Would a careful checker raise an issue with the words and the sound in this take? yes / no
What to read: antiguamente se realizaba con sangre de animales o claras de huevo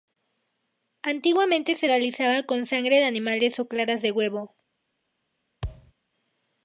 yes